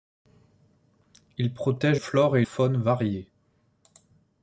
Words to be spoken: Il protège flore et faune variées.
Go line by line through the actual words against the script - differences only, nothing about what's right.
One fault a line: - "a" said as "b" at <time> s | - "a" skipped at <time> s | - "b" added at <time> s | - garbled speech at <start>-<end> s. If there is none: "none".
none